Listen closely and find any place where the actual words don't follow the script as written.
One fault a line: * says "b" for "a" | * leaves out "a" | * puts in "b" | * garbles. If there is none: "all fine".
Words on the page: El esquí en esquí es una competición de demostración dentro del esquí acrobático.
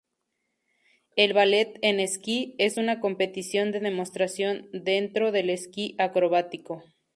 * says "ballet" for "esquí"